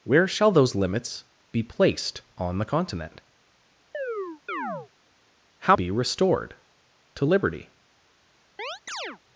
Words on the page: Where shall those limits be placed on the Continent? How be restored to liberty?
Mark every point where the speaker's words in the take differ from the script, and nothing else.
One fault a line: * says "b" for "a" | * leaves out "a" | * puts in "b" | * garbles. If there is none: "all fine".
all fine